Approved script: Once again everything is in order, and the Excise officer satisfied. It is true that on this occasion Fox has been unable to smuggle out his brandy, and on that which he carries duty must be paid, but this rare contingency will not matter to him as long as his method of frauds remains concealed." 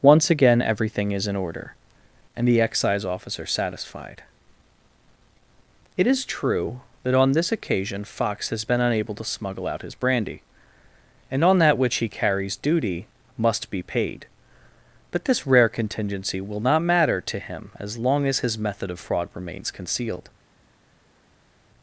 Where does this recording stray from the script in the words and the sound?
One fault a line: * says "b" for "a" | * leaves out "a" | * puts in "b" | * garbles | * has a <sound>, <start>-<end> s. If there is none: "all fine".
* says "fraud" for "frauds"